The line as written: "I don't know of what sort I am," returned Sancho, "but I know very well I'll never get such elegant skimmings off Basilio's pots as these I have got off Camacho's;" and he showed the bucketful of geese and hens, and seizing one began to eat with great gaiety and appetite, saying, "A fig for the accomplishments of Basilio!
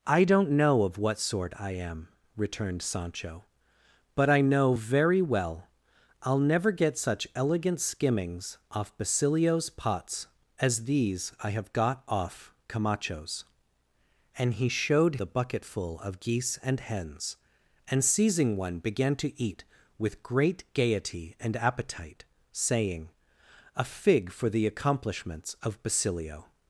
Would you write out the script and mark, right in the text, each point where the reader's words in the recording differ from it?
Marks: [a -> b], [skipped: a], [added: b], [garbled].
"I don't know of what sort I am," returned Sancho, "but I know very well I'll never get such elegant skimmings off Basilio's pots as these I have got off Camacho's;" and he showed the bucketful of geese and hens, and seizing one began to eat with great gaiety and appetite, saying, "A fig for the accomplishments of Basilio!